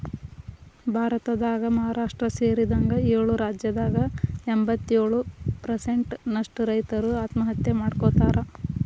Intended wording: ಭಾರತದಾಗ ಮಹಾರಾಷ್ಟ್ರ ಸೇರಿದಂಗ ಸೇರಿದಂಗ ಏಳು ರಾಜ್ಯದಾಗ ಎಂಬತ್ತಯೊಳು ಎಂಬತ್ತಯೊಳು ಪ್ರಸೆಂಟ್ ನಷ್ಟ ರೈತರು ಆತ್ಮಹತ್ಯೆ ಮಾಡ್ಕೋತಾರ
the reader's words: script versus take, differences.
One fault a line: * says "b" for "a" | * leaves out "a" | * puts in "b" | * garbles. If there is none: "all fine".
* leaves out "ಸೇರಿದಂಗ"
* leaves out "ಎಂಬತ್ತಯೊಳು"